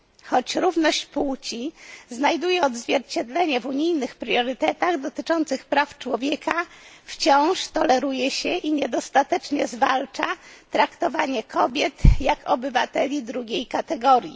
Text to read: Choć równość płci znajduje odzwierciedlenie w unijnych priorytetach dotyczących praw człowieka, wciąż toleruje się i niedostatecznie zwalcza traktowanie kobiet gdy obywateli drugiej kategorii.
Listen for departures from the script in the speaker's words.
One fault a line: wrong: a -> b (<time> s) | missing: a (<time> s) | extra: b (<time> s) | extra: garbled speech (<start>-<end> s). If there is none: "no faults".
wrong: gdy -> jak (12.2 s)